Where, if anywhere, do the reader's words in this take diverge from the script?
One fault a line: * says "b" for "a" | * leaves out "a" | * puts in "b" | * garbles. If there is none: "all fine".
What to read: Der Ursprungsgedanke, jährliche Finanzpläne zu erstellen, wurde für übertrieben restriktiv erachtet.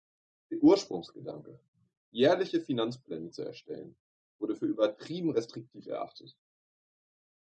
all fine